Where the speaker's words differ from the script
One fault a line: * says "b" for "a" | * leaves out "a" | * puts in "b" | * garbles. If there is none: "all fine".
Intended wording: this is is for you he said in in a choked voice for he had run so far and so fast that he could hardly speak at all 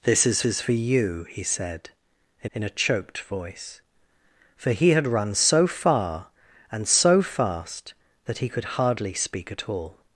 all fine